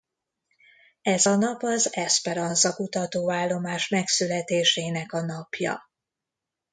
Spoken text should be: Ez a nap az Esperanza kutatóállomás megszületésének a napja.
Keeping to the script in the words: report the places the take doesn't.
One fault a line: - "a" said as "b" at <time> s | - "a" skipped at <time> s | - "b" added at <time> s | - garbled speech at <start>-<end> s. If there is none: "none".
none